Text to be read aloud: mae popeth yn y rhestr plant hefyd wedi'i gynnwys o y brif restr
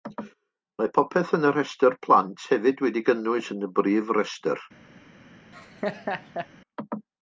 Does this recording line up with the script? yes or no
no